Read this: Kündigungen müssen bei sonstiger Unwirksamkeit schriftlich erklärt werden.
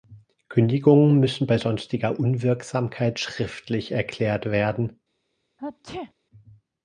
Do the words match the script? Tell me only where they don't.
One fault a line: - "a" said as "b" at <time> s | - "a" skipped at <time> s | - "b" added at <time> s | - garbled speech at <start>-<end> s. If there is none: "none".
none